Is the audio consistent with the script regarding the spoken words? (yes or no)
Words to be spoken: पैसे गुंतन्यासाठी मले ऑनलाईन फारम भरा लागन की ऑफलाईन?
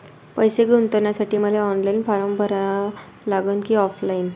yes